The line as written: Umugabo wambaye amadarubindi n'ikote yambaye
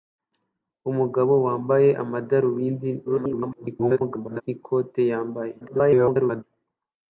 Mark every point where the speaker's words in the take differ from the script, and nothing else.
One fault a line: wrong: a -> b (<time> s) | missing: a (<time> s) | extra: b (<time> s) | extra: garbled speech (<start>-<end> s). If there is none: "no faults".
extra: garbled speech (3.0-4.4 s)
extra: garbled speech (5.6-6.4 s)